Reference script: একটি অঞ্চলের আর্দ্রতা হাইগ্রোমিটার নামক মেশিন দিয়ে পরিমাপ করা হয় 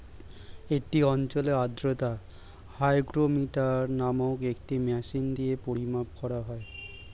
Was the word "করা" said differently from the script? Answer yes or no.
no